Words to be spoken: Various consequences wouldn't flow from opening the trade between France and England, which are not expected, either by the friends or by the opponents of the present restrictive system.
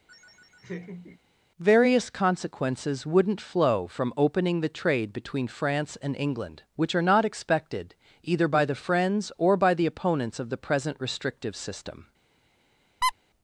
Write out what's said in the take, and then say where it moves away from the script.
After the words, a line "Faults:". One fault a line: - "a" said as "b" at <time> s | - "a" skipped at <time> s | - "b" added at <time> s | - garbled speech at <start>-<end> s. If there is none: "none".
Various consequences wouldn't flow from opening the trade between France and England, which are not expected, either by the friends or by the opponents of the present restrictive system.
Faults:
none